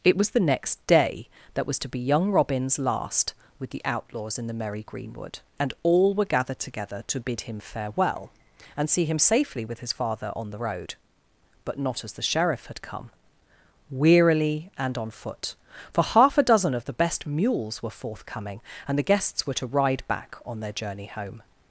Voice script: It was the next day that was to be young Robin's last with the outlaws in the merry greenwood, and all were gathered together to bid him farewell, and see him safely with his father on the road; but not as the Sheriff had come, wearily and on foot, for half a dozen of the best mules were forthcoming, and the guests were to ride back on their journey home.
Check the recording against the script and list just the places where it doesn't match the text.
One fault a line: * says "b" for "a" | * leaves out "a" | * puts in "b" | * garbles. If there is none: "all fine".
all fine